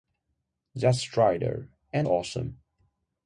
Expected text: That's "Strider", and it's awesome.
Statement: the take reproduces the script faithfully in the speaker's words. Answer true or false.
false